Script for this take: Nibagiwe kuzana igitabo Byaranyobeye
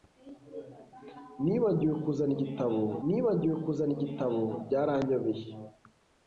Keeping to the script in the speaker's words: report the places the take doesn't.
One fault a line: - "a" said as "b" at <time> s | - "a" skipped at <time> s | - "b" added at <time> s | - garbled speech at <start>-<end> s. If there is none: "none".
- "nibagiwe kuzana igitabo" added at 3.1 s